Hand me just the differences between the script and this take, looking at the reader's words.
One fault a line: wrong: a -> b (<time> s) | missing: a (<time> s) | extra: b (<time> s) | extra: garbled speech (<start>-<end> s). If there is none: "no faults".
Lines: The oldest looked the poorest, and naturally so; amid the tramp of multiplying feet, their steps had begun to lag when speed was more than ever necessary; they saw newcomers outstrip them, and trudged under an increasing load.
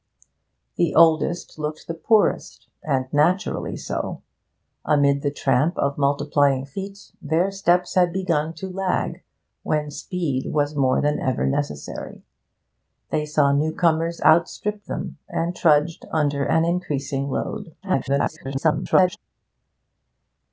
extra: garbled speech (17.8-19.2 s)